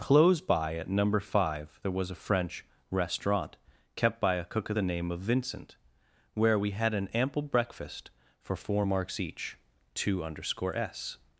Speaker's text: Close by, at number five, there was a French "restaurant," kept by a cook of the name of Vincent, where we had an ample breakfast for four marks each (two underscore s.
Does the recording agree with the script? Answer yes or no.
yes